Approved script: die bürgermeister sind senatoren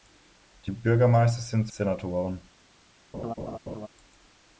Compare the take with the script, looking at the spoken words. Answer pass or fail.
pass